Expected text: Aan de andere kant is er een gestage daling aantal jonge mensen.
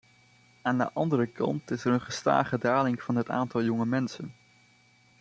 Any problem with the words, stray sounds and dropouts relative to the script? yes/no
yes